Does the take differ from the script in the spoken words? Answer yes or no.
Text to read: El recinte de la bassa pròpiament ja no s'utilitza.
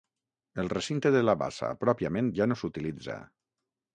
no